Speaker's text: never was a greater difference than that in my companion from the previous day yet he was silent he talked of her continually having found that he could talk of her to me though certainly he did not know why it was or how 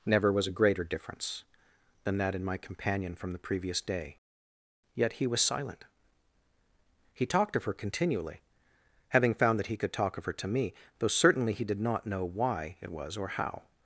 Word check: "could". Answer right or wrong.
right